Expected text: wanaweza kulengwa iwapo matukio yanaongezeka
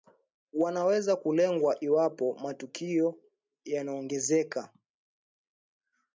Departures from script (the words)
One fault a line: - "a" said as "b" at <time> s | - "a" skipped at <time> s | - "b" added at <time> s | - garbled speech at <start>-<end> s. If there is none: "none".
none